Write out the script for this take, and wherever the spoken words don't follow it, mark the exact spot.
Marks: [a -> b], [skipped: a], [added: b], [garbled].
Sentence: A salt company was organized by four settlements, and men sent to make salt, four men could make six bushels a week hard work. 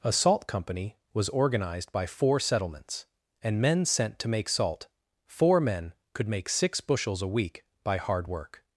A salt company was organized by four settlements, and men sent to make salt, four men could make six bushels a week [added: by] hard work.